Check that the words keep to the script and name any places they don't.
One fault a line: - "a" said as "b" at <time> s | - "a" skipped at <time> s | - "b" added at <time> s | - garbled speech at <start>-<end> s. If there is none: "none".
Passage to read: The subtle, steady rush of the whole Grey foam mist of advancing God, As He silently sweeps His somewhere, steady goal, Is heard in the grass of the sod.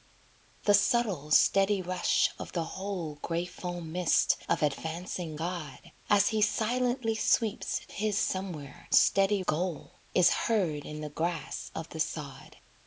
none